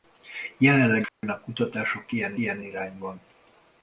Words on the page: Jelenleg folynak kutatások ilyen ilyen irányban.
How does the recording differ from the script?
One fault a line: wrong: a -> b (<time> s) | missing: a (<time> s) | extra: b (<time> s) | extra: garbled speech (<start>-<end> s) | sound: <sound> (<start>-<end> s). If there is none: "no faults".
sound: dropout (1.1-1.2 s)